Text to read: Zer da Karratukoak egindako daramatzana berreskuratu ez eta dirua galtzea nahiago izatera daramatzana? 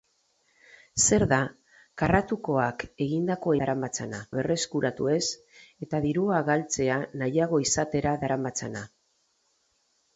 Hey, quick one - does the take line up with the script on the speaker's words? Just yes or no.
yes